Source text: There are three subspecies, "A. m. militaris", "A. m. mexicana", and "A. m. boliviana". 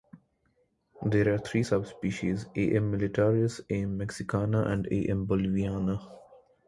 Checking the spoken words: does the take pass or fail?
pass